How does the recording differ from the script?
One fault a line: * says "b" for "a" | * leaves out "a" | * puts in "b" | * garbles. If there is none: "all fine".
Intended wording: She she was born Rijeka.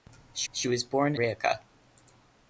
all fine